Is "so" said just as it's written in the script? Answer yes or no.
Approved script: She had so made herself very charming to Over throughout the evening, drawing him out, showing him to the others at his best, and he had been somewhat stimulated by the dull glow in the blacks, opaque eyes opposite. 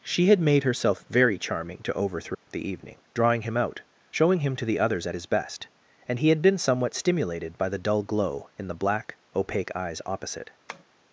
no